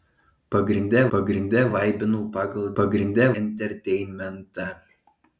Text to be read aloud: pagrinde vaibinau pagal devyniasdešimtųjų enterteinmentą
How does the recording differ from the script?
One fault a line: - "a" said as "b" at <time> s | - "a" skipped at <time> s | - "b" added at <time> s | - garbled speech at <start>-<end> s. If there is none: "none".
- "pagrinde" added at 1.1 s
- "devyniasdešimtųjų" said as "pagrinde" at 2.8 s